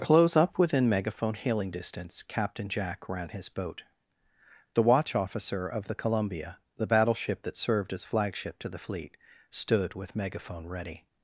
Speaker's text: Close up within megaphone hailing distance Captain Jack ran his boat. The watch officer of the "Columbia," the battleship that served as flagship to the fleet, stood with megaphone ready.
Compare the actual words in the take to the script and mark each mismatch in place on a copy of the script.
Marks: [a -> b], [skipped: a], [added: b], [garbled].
Close up within megaphone hailing distance Captain Jack ran his boat. The watch officer of the "Columbia," the battleship that served as flagship to the fleet, stood with megaphone ready.